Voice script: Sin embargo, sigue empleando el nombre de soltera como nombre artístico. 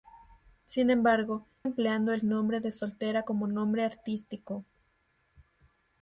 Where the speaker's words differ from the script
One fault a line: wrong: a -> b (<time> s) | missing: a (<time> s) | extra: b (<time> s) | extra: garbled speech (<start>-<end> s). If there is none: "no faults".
missing: sigue (1.4 s)